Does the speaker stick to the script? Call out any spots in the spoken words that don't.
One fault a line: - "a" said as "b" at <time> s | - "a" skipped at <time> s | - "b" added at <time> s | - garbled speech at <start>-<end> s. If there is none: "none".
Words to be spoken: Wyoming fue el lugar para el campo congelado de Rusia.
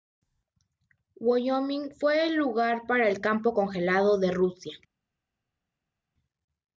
none